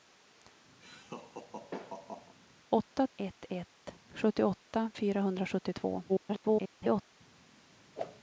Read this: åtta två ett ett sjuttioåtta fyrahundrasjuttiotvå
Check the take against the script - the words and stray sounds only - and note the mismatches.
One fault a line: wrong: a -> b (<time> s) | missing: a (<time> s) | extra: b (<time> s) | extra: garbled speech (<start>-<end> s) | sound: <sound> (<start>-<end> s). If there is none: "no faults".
sound: laugh (0.8-2.4 s)
missing: två (3.1 s)
extra: garbled speech (6.1-7.2 s)
sound: whoosh (7.9-8.2 s)